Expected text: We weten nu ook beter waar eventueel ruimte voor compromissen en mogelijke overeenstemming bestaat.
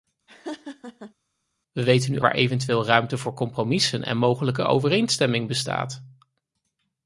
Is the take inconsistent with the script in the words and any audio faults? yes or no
yes